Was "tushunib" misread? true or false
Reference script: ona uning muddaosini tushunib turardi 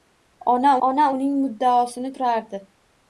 true